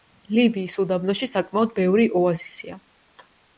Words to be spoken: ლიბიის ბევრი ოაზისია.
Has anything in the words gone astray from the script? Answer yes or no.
yes